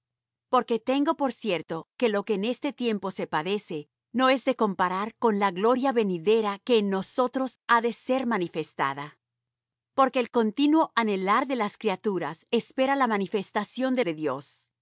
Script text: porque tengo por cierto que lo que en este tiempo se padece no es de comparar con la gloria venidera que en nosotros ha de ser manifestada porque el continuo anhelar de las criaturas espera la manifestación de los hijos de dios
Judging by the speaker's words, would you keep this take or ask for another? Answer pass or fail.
fail